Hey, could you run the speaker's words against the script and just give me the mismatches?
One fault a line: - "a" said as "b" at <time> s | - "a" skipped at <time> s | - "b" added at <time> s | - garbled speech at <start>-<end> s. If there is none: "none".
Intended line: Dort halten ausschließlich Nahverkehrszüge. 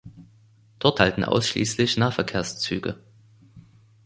none